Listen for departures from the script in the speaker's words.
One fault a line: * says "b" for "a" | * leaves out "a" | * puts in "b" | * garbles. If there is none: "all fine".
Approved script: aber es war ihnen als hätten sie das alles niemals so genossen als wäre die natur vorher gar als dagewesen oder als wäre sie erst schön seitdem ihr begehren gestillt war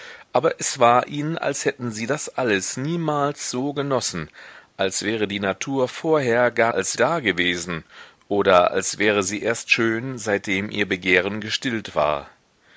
all fine